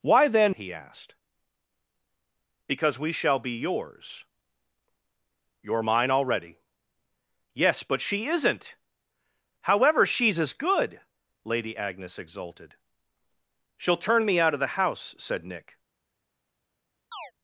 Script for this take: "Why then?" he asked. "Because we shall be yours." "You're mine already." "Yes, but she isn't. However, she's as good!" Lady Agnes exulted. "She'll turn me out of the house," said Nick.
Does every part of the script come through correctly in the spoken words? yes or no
yes